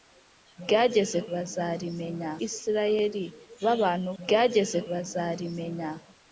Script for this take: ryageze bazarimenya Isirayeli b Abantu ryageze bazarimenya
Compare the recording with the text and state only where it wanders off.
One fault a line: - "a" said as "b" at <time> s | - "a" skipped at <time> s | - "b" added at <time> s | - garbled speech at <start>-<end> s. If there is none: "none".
none